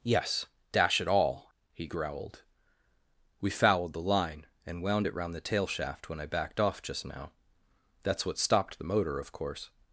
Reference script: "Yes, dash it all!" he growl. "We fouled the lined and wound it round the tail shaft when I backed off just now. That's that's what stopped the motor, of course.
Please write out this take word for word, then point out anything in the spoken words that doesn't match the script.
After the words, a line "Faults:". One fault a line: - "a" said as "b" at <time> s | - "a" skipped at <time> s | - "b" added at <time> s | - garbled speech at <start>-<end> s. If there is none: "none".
"Yes, dash it all!" he growled. "We fouled the line and wound it round the tail shaft when I backed off just now. That's what stopped the motor, of course.
Faults:
- "growl" said as "growled" at 1.9 s
- "lined" said as "line" at 4.0 s
- "that's" skipped at 8.2 s